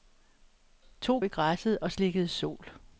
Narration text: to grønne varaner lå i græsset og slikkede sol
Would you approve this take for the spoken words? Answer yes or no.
no